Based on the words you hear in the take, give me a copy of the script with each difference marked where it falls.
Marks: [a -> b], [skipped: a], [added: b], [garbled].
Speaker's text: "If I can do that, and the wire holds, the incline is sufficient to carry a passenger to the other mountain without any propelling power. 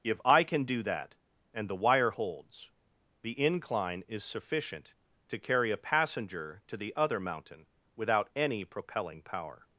"If I can do that, and the wire holds, the incline is sufficient to carry a passenger to the other mountain without any propelling power.